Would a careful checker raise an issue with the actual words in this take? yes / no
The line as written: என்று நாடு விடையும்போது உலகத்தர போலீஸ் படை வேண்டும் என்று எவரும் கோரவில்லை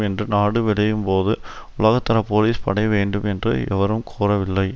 no